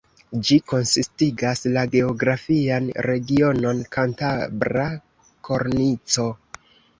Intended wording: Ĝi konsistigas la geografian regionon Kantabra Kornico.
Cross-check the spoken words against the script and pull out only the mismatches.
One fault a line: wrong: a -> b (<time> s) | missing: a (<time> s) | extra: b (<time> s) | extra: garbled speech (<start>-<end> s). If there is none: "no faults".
no faults